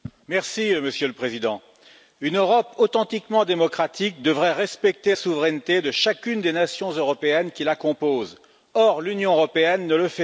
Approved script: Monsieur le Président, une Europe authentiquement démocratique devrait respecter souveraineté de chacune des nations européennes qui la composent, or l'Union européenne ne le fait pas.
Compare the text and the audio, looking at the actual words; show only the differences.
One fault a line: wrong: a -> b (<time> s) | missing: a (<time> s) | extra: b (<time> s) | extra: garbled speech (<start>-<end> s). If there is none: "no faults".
no faults